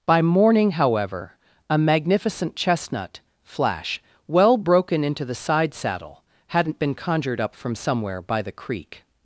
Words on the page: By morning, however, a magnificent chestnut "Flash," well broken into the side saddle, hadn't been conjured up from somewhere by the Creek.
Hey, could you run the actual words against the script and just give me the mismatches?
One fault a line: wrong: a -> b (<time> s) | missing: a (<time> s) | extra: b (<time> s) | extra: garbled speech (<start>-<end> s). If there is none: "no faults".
no faults